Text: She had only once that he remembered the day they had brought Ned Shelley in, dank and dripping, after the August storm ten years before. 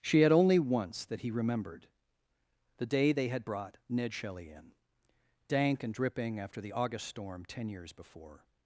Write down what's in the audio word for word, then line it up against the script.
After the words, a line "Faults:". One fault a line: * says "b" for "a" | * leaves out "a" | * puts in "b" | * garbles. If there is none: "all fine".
She had only once that he remembered the day they had brought Ned Shelley in, dank and dripping, after the August storm ten years before.
Faults:
all fine